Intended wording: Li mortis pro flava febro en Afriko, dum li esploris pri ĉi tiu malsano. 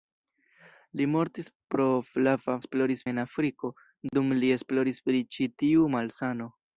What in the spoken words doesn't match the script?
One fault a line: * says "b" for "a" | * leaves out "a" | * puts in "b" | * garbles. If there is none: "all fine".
* says "esploris" for "febro"